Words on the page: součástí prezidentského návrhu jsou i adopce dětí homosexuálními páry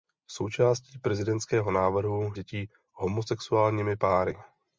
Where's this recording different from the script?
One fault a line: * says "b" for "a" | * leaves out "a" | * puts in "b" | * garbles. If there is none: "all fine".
* leaves out "jsou i adopce"